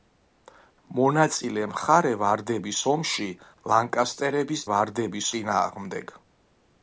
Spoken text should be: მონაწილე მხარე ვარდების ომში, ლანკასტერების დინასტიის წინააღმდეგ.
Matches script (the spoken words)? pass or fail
fail